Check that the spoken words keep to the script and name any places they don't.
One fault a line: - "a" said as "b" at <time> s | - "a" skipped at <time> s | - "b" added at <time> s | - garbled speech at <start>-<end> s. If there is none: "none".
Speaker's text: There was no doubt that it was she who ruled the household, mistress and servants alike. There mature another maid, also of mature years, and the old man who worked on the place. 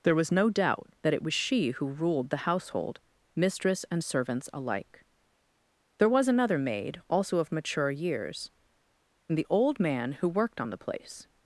- "mature" said as "was" at 6.1 s